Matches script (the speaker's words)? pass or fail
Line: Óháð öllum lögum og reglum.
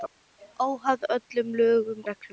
fail